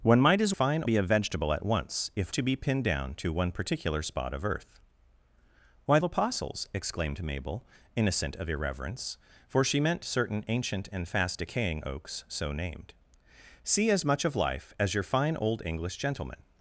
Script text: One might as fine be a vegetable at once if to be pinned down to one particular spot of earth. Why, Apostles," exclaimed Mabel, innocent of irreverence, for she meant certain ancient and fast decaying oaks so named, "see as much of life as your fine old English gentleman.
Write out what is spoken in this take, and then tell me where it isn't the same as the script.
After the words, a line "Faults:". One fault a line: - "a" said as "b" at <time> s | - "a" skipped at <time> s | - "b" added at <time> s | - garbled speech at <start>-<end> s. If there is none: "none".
One might as fine be a vegetable at once if to be pinned down to one particular spot of earth. Why, Apostles," exclaimed Mabel, innocent of irreverence, for she meant certain ancient and fast decaying oaks so named, "see as much of life as your fine old English gentleman.
Faults:
none